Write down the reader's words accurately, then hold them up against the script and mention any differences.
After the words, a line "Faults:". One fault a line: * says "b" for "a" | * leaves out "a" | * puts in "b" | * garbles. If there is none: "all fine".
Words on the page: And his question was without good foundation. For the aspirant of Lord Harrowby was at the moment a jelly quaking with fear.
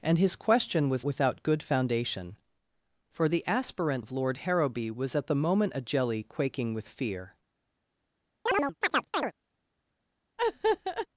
And his question was without good foundation. For the aspirant of Lord Harrowby was at the moment a jelly quaking with fear.
Faults:
all fine